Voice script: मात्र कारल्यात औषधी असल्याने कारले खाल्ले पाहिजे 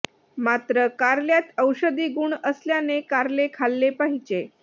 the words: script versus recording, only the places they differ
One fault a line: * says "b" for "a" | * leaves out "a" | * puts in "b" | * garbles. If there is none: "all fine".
* puts in "गुण"